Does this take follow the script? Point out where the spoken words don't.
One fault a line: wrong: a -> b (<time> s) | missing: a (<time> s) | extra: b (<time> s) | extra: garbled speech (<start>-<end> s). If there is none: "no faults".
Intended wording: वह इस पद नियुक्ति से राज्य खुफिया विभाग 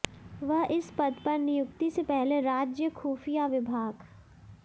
extra: पर (1.2 s)
extra: पहले (2.0 s)